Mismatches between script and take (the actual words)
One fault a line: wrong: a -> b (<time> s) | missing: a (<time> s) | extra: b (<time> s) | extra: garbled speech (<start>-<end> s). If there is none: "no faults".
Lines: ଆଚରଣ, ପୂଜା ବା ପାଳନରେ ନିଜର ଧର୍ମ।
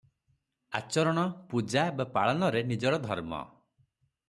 no faults